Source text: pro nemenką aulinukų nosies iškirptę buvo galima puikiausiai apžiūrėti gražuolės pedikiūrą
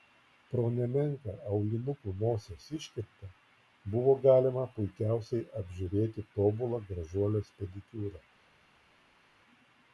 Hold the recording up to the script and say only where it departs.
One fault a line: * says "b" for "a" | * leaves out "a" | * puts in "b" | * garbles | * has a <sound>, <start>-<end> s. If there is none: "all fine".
* puts in "tobulą"